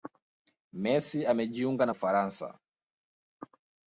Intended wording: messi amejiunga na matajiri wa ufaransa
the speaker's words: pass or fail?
fail